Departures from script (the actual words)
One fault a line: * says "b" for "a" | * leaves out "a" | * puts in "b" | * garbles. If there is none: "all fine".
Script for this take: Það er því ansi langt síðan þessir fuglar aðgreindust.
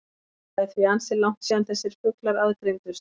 all fine